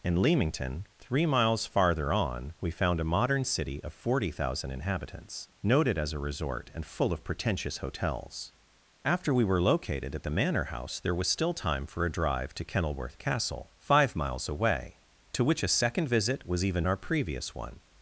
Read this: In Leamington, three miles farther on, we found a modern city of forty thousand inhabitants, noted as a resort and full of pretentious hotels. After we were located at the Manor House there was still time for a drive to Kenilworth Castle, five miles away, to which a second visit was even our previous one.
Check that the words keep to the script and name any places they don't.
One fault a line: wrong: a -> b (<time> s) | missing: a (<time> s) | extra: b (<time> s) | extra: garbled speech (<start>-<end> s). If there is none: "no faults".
no faults